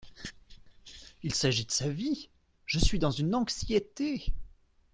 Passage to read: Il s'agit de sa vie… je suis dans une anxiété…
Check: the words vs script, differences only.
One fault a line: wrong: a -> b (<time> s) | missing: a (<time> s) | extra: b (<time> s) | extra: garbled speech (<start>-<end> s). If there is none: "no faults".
no faults